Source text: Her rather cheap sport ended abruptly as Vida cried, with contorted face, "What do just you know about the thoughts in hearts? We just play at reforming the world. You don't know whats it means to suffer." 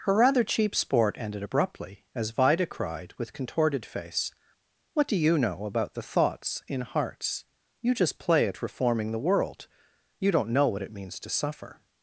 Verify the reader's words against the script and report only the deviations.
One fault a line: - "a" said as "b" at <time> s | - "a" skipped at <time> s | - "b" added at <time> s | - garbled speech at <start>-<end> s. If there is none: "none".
- "just" skipped at 5.2 s
- "We" said as "You" at 7.8 s
- "whats" said as "what" at 10.7 s